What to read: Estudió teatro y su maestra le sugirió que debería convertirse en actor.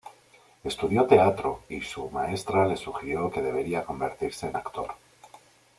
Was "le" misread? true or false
false